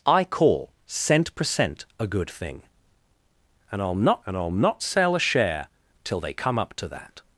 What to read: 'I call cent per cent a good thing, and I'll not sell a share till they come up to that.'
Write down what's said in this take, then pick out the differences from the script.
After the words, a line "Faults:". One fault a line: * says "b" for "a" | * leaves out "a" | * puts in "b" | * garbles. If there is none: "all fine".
'I call cent per cent a good thing, and I'll not and I'll not sell a share till they come up to that.'
Faults:
* puts in "and I'll not"